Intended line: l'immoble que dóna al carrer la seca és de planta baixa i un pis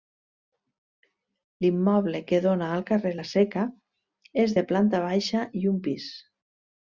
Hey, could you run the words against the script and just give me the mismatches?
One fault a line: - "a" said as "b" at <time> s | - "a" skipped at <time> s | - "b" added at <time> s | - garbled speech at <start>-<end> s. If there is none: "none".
none